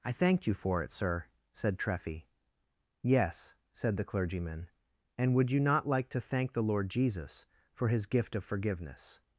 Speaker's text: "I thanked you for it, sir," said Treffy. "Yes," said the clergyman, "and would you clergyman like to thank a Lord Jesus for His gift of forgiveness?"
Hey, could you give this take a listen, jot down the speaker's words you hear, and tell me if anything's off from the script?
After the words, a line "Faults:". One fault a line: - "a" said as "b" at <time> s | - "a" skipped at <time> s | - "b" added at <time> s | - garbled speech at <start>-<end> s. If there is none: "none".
"I thanked you for it, sir," said Treffy. "Yes," said the clergyman, "and would you not like to thank the Lord Jesus for His gift of forgiveness?"
Faults:
- "clergyman" said as "not" at 5.6 s
- "a" said as "the" at 6.5 s